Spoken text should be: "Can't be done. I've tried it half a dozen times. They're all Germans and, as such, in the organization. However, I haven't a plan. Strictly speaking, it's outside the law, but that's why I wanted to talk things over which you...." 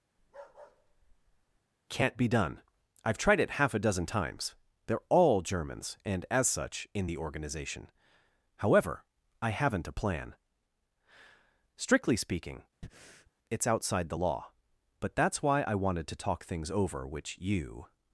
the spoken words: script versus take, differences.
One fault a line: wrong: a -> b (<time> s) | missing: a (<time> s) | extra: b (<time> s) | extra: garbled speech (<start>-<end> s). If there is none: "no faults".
no faults